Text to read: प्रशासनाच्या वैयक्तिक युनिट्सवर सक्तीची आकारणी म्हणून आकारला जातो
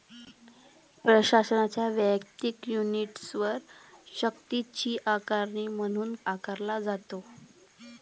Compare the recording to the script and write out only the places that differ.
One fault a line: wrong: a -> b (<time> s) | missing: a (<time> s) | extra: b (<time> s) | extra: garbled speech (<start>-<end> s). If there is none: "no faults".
no faults